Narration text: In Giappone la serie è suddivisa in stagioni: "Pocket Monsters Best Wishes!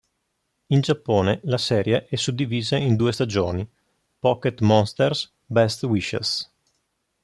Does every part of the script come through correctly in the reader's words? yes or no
no